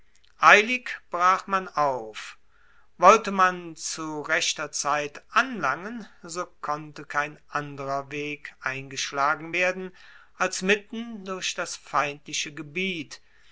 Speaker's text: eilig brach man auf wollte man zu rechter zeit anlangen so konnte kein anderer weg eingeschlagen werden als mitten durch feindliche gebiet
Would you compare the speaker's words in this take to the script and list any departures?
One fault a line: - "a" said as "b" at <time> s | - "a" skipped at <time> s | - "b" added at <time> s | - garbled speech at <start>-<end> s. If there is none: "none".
- "das" added at 11.5 s